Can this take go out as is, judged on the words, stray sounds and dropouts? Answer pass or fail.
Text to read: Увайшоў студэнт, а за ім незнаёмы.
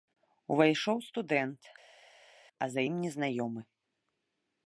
pass